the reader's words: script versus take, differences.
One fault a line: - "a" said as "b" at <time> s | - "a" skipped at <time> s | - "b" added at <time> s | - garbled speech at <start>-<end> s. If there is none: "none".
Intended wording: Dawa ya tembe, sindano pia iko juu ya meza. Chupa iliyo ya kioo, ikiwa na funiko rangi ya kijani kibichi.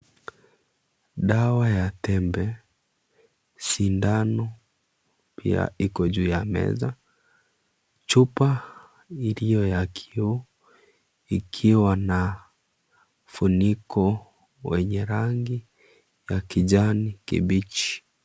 - "wenye" added at 14.6 s